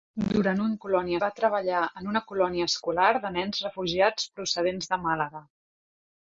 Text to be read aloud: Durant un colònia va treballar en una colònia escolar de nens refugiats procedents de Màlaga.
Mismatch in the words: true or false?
false